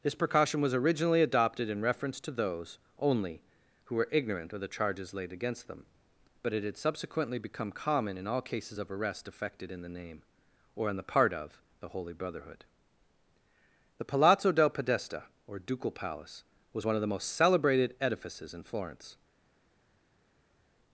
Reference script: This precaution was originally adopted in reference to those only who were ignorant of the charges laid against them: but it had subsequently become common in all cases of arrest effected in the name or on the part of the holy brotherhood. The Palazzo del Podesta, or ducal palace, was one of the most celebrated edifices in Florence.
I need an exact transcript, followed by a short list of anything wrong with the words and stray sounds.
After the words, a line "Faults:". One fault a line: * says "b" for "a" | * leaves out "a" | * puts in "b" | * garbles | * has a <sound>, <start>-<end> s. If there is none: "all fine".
This precaution was originally adopted in reference to those only who were ignorant of the charges laid against them: but it had subsequently become common in all cases of arrest effected in the name or on the part of the holy brotherhood. The Palazzo del Podesta, or ducal palace, was one of the most celebrated edifices in Florence.
Faults:
all fine